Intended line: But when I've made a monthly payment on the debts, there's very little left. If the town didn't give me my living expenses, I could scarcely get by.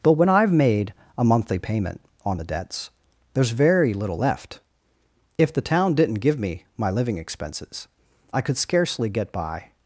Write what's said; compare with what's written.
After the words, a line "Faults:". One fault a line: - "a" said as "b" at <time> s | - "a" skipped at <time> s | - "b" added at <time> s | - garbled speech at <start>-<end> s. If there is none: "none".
But when I've made a monthly payment on the debts, there's very little left. If the town didn't give me my living expenses, I could scarcely get by.
Faults:
none